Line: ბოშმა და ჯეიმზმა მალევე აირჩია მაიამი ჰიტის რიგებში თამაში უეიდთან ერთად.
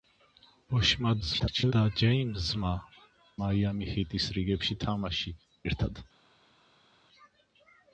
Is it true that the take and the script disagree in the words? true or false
true